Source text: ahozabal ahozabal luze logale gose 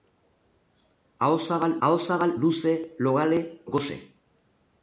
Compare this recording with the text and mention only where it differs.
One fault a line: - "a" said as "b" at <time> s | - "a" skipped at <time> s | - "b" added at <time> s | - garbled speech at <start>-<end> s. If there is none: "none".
none